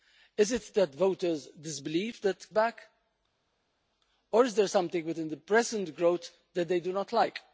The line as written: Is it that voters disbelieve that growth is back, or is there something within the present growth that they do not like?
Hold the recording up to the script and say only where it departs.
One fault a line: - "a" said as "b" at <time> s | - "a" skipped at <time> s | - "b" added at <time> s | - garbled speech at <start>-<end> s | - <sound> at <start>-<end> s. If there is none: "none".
- "growth is" skipped at 2.5 s